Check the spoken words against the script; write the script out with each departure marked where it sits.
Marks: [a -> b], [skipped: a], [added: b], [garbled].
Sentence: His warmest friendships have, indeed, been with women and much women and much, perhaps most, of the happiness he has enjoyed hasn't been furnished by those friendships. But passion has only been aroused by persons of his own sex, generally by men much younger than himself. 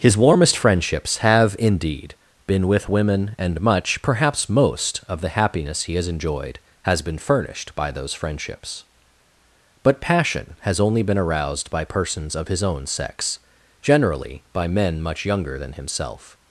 His warmest friendships have, indeed, been with women and much [skipped: women and much,] perhaps most, of the happiness he has enjoyed [hasn't -> has] been furnished by those friendships. But passion has only been aroused by persons of his own sex, generally by men much younger than himself.